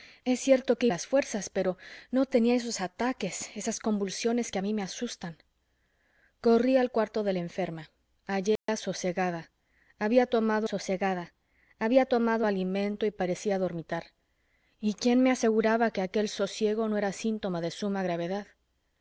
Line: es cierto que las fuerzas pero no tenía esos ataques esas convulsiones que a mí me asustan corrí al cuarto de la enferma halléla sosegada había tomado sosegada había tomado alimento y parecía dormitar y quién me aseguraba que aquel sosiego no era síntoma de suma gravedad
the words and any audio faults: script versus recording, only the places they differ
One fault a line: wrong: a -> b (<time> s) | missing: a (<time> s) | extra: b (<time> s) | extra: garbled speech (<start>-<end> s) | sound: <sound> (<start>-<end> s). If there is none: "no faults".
sound: dropout (8.6-8.7 s)